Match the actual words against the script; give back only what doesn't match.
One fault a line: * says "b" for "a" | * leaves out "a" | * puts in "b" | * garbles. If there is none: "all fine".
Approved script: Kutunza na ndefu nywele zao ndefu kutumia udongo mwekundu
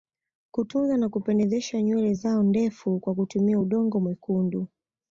* says "kupendezesha" for "ndefu"
* puts in "kwa"